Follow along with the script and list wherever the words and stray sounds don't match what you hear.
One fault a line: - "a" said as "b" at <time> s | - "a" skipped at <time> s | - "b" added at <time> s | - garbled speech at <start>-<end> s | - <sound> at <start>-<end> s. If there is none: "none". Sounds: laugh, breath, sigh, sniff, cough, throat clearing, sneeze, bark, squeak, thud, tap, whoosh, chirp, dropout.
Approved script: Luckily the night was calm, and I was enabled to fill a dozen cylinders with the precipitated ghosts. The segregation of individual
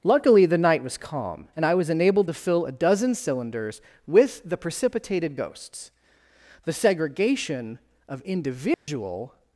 - dropout at 8.7-8.9 s